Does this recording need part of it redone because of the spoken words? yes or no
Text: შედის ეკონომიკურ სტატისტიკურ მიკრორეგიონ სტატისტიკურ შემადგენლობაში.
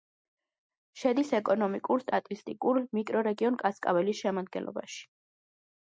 yes